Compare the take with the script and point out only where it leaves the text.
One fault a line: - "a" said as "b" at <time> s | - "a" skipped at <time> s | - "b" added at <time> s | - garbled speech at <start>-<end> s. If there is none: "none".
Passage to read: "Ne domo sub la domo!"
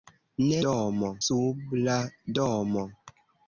none